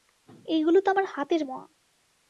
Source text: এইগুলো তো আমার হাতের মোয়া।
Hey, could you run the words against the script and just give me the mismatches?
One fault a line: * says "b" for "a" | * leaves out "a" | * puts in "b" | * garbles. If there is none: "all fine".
all fine